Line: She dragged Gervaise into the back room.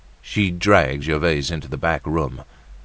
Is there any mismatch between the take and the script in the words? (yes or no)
no